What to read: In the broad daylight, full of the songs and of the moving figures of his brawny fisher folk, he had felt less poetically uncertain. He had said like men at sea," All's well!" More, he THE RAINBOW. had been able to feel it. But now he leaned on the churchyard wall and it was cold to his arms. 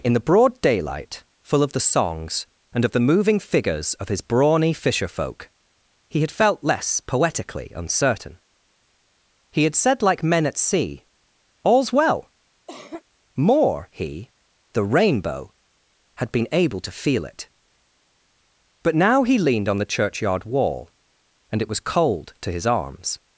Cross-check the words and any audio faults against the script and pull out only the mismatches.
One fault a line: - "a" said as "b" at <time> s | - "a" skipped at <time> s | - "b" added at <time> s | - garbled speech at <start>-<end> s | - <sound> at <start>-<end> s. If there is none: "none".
- cough at 12.7-13.0 s